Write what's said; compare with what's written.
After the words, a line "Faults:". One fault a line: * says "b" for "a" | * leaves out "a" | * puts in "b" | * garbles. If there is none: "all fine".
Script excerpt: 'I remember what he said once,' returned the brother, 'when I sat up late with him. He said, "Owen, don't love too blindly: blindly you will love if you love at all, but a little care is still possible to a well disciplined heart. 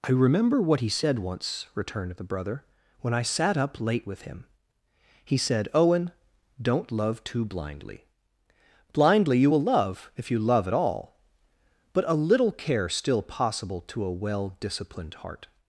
'I remember what he said once,' returned the brother, 'when I sat up late with him. He said, "Owen, don't love too blindly: blindly you will love if you love at all, but a little care still possible to a well disciplined heart.
Faults:
* leaves out "is"